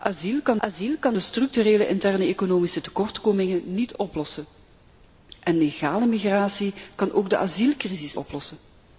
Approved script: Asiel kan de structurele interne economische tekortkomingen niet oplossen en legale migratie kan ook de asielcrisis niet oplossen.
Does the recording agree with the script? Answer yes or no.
no